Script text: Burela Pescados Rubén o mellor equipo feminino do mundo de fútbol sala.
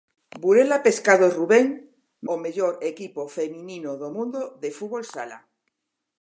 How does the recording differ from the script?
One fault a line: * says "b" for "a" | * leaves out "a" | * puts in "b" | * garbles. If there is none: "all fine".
all fine